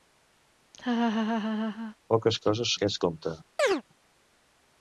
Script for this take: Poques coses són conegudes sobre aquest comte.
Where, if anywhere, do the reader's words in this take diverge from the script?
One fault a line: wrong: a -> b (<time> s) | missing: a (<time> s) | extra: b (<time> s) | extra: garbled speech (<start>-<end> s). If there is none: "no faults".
missing: són conegudes sobre (2.7 s)